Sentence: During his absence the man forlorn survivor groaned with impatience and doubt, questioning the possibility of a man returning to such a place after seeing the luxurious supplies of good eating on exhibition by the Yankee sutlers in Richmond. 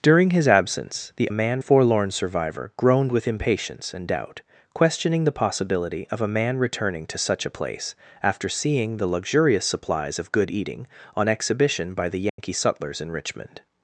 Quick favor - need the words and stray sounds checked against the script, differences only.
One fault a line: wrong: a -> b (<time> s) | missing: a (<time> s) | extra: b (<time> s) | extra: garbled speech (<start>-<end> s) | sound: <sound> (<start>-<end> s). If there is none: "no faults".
sound: dropout (12.3-12.4 s)